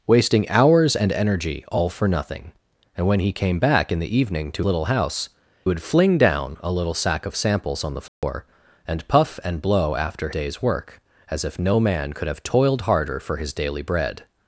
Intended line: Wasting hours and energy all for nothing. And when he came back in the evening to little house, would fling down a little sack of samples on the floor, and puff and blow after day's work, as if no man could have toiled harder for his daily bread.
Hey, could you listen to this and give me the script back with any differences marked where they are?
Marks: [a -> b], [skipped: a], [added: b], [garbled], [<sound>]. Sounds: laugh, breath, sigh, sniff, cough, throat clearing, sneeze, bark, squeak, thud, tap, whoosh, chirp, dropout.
Wasting hours and energy all for nothing. And when he came back in the evening to little house, would fling down a little sack of samples on the floor, [dropout] and puff and blow after day's work, as if no man could have toiled harder for his daily bread.